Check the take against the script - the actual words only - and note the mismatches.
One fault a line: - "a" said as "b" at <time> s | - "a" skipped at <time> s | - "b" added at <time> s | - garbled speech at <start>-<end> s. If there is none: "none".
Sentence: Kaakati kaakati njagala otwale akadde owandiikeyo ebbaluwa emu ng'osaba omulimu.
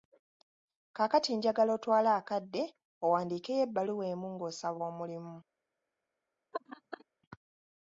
- "kaakati" skipped at 1.3 s